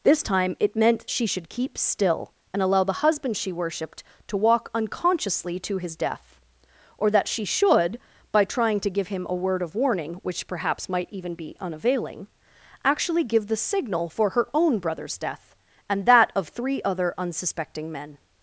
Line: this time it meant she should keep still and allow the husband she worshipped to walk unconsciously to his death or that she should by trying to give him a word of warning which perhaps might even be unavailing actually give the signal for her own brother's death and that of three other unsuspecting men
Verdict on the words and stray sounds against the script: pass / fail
pass